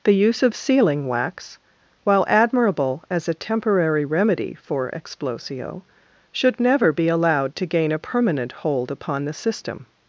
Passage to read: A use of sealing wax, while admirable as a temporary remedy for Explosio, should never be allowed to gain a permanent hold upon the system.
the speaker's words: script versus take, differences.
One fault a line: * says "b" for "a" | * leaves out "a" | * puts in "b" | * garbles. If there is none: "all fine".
* says "The" for "A"